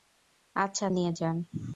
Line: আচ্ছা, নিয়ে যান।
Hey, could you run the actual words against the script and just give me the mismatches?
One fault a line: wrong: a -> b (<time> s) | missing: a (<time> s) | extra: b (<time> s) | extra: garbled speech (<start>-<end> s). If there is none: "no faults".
no faults